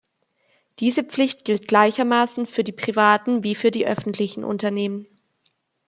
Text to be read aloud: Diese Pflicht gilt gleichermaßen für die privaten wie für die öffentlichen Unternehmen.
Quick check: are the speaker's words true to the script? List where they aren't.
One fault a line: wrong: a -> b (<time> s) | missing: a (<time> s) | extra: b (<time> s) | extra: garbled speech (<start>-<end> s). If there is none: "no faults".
no faults